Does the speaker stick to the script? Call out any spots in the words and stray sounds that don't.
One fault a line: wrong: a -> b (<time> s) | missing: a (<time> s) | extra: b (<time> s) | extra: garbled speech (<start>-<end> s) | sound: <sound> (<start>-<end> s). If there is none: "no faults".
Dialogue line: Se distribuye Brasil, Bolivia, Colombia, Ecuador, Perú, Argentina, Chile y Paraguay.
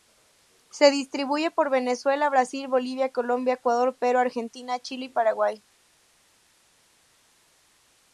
extra: por Venezuela (1.5 s)